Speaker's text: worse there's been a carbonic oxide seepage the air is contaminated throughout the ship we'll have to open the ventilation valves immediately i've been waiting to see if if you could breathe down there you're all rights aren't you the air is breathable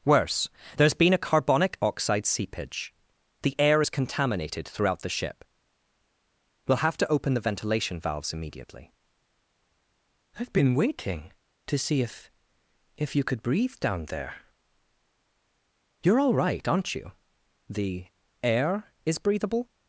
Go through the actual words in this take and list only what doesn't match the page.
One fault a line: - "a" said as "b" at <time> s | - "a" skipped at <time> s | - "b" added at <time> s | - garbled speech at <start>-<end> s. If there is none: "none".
- "rights" said as "right" at 16.3 s